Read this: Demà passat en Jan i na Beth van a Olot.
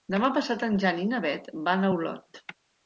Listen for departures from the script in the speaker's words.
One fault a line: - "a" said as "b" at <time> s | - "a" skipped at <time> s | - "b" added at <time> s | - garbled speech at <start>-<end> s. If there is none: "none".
none